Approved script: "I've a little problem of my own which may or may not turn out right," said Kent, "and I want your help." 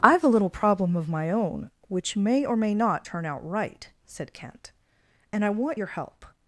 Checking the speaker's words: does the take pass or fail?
pass